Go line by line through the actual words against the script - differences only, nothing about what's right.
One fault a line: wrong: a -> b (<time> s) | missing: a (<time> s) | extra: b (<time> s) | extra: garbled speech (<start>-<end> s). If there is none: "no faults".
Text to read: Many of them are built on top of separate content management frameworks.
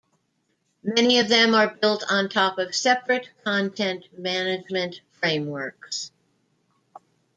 no faults